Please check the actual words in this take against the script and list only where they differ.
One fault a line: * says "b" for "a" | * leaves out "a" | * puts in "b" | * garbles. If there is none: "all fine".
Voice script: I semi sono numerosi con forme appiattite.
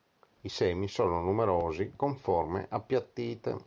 all fine